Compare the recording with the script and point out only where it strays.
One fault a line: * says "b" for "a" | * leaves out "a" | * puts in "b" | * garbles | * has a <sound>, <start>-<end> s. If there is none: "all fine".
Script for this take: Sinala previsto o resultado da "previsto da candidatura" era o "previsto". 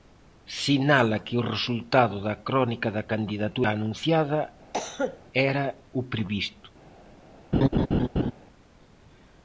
* says "que" for "previsto"
* says "crónica" for "previsto"
* puts in "anunciada"
* has a cough, 4.7-5.2 s
* has a laugh, 7.5-8.3 s